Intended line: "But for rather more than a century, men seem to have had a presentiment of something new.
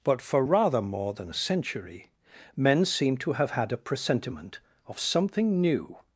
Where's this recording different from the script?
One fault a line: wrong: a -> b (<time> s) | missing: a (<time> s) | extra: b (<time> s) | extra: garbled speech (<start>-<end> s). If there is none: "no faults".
no faults